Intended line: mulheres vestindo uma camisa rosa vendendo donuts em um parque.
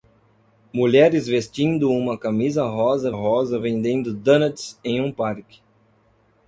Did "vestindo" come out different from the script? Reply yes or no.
no